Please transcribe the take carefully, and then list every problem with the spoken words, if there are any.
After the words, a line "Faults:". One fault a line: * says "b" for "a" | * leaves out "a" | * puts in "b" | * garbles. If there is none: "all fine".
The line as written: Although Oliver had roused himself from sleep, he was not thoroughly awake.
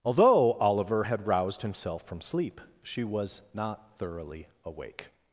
Although Oliver had roused himself from sleep, she was not thoroughly awake.
Faults:
* says "she" for "he"